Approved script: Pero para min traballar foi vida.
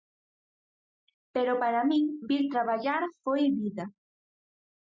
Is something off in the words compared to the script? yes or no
yes